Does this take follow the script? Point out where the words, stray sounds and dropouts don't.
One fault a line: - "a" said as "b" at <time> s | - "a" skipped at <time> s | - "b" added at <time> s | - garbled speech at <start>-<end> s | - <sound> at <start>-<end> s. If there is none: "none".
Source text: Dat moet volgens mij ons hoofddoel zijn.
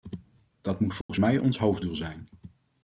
- dropout at 1.0-1.1 s